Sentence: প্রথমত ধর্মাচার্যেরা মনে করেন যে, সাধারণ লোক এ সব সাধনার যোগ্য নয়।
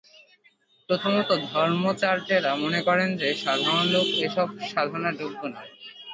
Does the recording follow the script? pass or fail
pass